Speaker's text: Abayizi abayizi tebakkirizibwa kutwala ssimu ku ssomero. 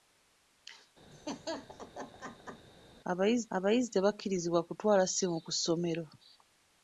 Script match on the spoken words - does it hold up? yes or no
yes